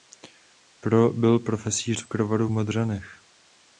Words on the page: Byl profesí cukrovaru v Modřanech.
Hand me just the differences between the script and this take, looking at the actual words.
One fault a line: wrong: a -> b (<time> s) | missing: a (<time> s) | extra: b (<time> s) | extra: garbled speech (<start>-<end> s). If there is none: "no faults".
no faults